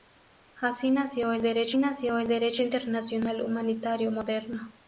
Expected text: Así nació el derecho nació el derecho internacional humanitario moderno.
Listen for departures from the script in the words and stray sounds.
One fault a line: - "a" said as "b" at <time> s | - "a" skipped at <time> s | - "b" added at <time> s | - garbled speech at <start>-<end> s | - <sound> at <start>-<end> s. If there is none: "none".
none